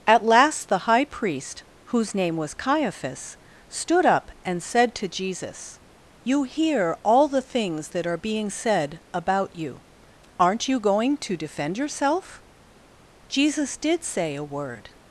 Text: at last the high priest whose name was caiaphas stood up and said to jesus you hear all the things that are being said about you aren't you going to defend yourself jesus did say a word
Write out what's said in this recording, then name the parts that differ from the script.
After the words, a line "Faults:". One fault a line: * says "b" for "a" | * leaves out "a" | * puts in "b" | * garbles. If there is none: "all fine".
at last the high priest whose name was caiaphas stood up and said to jesus you hear all the things that are being said about you aren't you going to defend yourself jesus did say a word
Faults:
all fine